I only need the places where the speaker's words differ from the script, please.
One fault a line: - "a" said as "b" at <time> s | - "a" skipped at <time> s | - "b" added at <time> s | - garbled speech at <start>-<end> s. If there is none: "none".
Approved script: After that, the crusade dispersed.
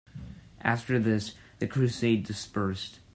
- "that" said as "this" at 1.0 s